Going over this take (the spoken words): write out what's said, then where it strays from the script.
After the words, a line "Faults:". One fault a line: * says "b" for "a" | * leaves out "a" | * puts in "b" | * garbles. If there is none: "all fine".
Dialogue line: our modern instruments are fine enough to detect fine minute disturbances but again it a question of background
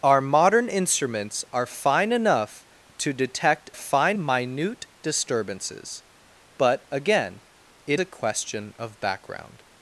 our modern instruments are fine enough to detect fine minute disturbances but again it a question of background
Faults:
all fine